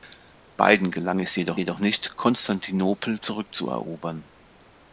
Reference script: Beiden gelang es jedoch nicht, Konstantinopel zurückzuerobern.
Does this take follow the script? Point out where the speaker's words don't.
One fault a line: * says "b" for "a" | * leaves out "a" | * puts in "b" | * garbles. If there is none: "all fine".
* puts in "jedoch"